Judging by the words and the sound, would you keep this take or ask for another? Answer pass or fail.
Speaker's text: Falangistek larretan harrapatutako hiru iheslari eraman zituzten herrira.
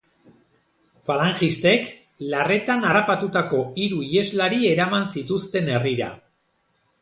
pass